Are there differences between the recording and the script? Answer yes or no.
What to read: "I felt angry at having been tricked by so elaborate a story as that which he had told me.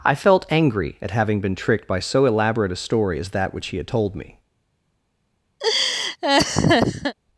no